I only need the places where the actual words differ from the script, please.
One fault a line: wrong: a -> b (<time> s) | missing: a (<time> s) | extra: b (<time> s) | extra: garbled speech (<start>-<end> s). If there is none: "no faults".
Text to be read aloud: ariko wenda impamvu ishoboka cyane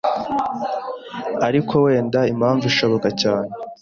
no faults